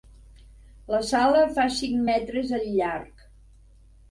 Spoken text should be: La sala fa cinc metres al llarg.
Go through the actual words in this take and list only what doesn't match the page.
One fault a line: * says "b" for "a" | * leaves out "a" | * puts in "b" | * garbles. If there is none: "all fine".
all fine